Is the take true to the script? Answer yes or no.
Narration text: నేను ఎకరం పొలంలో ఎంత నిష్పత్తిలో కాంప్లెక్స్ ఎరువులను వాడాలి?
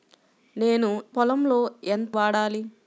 no